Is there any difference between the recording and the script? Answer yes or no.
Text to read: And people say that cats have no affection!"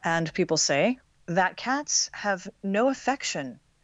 no